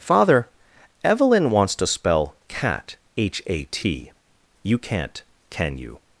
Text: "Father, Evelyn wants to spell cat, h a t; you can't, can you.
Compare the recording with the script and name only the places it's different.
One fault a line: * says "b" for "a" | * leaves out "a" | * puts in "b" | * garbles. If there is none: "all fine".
all fine